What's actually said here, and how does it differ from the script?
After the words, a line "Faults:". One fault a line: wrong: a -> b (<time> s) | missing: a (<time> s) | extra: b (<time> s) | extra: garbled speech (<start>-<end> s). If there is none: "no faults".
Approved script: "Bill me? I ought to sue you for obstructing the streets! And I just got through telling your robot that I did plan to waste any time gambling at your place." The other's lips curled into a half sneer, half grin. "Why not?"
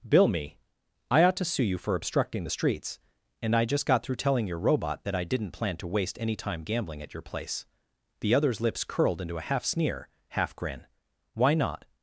"Bill me? I ought to sue you for obstructing the streets! And I just got through telling your robot that I didn't plan to waste any time gambling at your place." The other's lips curled into a half sneer, half grin. "Why not?"
Faults:
wrong: did -> didn't (5.2 s)